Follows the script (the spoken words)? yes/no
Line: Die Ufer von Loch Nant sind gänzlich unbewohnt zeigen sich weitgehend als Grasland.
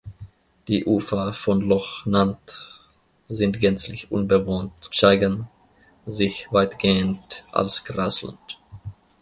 yes